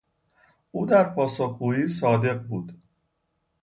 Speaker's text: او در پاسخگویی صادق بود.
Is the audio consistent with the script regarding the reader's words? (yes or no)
yes